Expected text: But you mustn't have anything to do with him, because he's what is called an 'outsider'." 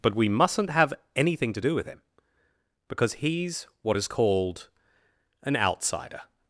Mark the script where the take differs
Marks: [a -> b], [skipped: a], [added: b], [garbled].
But [you -> we] mustn't have anything to do with him, because he's what is called an 'outsider'."